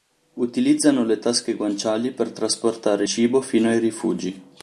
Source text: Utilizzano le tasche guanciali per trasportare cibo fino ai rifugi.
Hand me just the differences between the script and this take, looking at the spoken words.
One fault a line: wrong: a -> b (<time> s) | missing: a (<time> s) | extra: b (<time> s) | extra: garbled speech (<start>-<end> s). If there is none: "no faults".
no faults